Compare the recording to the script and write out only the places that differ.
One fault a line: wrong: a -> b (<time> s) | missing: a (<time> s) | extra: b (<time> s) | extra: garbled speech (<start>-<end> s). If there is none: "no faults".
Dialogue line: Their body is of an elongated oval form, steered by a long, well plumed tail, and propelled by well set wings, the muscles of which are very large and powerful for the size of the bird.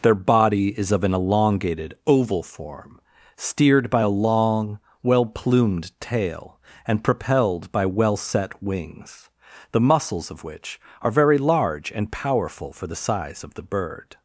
no faults